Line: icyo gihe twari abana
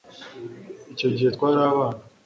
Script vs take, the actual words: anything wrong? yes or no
no